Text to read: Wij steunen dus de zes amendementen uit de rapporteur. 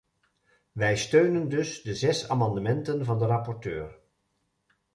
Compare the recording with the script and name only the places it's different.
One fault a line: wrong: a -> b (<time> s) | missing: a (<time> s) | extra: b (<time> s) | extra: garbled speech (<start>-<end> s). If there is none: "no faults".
wrong: uit -> van (3.1 s)